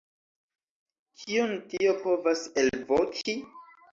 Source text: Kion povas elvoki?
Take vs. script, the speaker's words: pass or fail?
fail